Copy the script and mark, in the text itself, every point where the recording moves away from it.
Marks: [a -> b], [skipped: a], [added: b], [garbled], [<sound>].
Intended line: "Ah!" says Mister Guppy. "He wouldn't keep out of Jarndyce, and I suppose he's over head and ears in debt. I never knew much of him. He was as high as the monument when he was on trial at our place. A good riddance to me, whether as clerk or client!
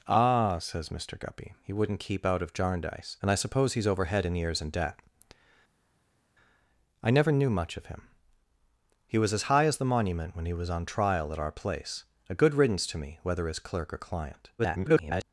"Ah!" says Mister Guppy. "He wouldn't keep out of Jarndyce, and I suppose he's over head and ears in debt. I never knew much of him. He was as high as the monument when he was on trial at our place. A good riddance to me, whether as clerk or client! [garbled]